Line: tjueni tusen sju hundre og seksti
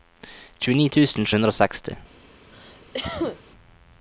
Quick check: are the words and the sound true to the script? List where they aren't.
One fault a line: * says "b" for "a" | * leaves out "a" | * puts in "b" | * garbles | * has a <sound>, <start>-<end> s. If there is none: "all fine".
* leaves out "sju"
* has a cough, 2.5-3.4 s